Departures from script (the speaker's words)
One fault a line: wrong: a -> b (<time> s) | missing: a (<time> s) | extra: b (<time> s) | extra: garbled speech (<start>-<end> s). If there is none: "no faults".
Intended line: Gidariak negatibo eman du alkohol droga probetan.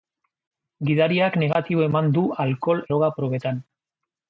no faults